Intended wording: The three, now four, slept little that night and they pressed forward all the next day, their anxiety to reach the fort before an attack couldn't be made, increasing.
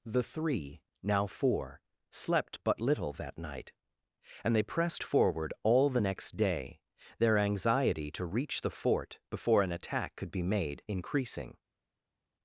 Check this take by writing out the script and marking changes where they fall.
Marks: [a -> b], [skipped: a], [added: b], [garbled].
The three, now four, slept [added: but] little that night and they pressed forward all the next day, their anxiety to reach the fort before an attack [couldn't -> could] be made, increasing.